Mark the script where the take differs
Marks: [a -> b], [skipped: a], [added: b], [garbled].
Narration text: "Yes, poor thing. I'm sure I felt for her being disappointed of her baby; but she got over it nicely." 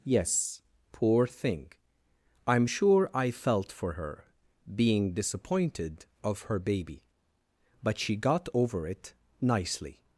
"Yes, poor thing. I'm sure I felt for her being disappointed of her baby; but she got over it nicely."